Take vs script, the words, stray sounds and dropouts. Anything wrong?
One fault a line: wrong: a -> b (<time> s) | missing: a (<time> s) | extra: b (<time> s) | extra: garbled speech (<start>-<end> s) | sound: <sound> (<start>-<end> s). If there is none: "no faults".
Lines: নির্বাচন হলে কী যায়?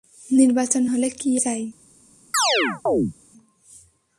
sound: chirp (2.3-3.1 s)